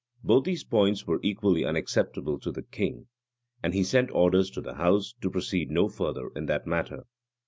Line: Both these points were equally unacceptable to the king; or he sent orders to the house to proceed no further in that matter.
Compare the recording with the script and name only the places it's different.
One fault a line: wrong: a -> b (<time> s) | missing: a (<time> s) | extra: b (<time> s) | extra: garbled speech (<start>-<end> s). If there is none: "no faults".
wrong: or -> and (3.6 s)